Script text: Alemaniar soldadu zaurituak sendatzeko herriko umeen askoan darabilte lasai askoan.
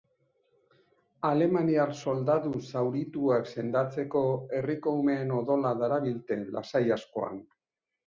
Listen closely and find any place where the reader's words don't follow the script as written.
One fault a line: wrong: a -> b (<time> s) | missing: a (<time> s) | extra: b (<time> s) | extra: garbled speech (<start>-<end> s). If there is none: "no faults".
wrong: askoan -> odola (5.5 s)